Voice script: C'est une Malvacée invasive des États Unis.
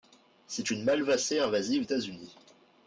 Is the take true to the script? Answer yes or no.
no